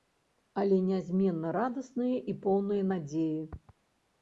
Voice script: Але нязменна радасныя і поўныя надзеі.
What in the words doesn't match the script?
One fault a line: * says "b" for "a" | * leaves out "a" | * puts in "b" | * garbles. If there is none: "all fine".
all fine